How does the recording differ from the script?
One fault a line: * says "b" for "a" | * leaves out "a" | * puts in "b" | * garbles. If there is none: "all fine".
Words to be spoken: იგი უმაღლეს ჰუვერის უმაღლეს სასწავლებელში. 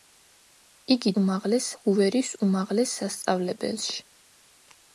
all fine